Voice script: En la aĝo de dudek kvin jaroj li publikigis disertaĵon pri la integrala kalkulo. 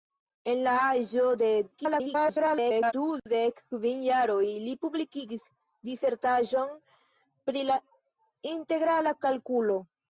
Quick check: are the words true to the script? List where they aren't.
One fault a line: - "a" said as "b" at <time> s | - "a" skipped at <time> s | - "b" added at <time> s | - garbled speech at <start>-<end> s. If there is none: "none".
- garbled speech at 1.7-2.9 s